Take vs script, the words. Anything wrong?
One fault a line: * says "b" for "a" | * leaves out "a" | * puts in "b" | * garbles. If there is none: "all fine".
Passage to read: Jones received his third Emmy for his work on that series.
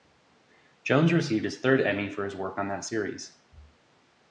all fine